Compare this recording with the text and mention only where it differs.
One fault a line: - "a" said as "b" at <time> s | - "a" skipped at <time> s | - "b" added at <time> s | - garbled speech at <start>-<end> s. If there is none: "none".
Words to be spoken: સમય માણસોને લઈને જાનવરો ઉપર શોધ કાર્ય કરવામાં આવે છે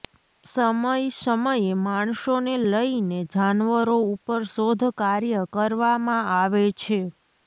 - "સમયે" added at 1.1 s